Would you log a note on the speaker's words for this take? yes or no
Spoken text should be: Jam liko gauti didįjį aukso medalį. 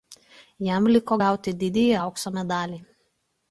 no